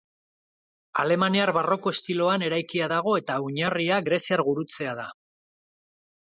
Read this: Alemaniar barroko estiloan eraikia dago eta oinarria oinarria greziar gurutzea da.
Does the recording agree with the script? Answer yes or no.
no